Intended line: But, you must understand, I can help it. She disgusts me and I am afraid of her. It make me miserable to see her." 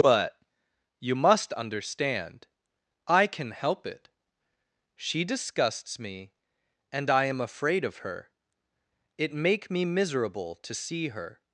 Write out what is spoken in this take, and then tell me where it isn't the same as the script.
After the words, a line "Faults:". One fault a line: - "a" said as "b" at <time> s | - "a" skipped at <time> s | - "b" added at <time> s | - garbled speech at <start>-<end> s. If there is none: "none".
But, you must understand, I can help it. She disgusts me and I am afraid of her. It make me miserable to see her."
Faults:
none